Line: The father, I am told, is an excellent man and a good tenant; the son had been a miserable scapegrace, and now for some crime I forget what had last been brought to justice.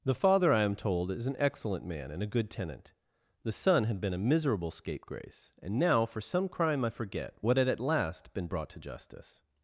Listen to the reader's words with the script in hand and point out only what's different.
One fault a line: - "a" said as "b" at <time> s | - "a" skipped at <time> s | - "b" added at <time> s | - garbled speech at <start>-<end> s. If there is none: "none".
- "at" added at 7.7 s